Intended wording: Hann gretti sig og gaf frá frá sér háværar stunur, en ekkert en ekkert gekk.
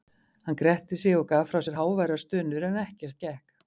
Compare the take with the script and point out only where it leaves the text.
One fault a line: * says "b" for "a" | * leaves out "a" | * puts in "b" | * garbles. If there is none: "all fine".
* leaves out "frá"
* leaves out "en ekkert"